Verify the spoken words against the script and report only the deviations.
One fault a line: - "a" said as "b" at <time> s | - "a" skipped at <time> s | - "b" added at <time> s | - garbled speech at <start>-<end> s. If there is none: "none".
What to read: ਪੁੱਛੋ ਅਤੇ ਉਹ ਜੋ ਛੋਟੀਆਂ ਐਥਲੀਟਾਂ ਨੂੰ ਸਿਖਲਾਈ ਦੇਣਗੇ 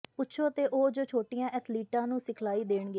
none